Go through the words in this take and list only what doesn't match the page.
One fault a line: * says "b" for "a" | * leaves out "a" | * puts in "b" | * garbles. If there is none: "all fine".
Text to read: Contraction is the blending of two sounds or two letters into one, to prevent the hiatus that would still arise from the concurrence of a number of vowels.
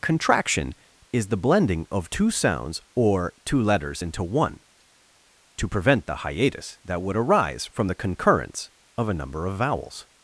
* leaves out "still"